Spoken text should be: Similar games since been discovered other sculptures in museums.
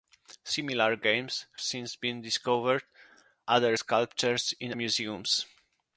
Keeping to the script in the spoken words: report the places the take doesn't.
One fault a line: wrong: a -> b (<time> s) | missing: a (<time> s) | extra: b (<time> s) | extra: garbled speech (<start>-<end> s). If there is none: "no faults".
no faults